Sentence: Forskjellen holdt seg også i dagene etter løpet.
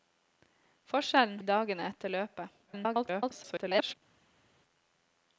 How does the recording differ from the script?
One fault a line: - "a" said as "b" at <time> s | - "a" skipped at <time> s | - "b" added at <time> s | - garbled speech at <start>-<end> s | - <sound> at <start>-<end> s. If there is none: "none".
- "holdt seg også" skipped at 1.4 s
- garbled speech at 2.7-3.9 s